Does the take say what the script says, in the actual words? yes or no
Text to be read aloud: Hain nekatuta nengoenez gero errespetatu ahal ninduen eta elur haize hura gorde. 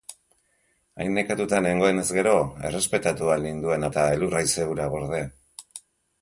yes